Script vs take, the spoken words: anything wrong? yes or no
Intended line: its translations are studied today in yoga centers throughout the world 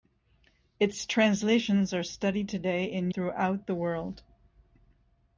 yes